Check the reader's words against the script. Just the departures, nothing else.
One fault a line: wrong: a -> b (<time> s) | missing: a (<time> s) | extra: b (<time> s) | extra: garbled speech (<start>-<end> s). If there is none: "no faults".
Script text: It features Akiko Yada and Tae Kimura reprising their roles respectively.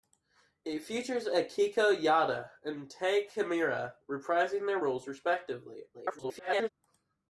extra: garbled speech (5.9-6.7 s)